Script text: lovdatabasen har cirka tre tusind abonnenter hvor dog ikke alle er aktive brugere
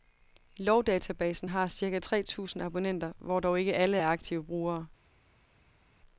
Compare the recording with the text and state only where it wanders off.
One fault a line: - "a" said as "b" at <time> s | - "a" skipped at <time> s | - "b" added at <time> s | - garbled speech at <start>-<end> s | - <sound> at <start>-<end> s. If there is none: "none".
none